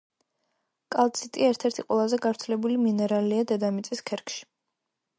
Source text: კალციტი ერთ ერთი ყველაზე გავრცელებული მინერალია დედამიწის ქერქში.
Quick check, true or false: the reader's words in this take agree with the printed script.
true